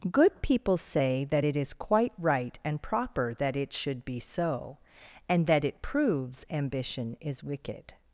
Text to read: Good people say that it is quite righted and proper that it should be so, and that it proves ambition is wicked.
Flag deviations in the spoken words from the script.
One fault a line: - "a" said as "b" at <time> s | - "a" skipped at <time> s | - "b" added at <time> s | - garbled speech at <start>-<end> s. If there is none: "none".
- "righted" said as "right" at 2.2 s